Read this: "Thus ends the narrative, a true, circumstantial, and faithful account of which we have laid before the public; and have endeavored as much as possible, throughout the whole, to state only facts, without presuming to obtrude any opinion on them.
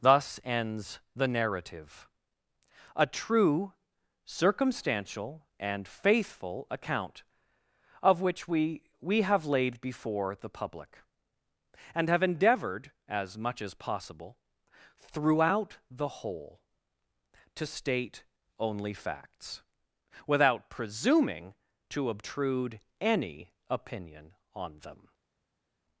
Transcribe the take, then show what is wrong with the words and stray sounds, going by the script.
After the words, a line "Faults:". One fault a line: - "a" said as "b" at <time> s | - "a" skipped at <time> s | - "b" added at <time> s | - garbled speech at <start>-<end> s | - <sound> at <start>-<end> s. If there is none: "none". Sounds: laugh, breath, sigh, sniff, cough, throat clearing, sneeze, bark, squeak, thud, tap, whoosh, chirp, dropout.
"Thus ends the narrative, a true, circumstantial, and faithful account of which we we have laid before the public; and have endeavored as much as possible, throughout the whole, to state only facts, without presuming to obtrude any opinion on them.
Faults:
- "we" added at 9.0 s